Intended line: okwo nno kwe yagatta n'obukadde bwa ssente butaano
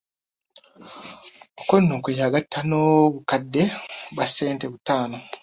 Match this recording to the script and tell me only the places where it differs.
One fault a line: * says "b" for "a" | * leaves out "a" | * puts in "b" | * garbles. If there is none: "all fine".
all fine